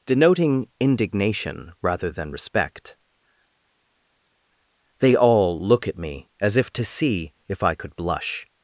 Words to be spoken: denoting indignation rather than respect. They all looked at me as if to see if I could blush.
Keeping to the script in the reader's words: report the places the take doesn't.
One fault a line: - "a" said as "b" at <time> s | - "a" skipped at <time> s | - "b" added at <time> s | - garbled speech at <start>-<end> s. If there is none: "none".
- "looked" said as "look" at 5.6 s